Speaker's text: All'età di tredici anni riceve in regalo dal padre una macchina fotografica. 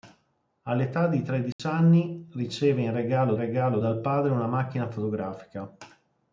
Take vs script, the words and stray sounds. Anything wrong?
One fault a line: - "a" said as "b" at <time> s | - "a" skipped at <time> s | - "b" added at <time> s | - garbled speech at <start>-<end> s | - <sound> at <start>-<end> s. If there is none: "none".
- dropout at 1.5-1.6 s
- "regalo" added at 3.3 s